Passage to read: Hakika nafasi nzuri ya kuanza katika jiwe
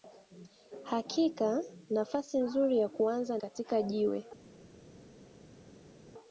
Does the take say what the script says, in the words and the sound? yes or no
yes